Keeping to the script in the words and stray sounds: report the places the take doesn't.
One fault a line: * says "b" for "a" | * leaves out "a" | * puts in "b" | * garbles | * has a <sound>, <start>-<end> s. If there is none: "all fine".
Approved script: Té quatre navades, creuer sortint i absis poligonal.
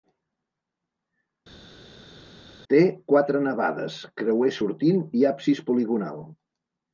all fine